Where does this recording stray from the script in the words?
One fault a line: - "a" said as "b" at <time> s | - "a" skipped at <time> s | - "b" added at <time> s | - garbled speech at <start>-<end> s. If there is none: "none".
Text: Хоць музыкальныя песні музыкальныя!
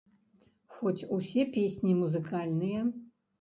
- "музыкальныя" said as "усе" at 1.2 s